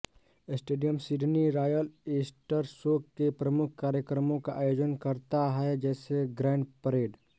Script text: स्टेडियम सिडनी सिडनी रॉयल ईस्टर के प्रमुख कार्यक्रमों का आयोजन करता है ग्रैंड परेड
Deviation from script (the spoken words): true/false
true